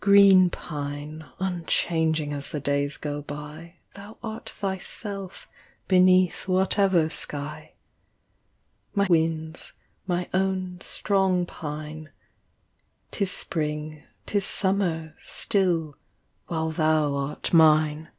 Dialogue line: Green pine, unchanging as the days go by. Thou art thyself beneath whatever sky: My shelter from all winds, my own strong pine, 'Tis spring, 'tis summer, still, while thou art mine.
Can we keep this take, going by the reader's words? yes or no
no